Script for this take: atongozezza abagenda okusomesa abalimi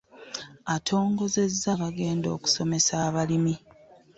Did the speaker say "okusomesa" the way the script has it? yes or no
yes